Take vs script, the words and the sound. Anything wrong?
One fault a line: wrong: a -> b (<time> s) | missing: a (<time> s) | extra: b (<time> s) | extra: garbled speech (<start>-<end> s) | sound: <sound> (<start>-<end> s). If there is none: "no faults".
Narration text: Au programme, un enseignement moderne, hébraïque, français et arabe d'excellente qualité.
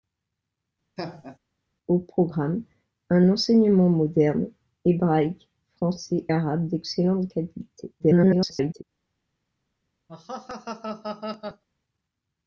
sound: laugh (1.0-1.4 s)
missing: et (6.3 s)
extra: garbled speech (8.0-8.8 s)
sound: laugh (10.1-11.6 s)